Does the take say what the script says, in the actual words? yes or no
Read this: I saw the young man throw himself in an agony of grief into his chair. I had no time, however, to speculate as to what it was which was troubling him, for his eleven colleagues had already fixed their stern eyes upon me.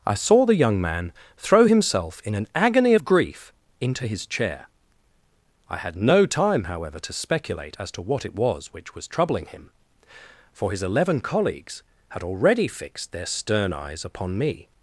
yes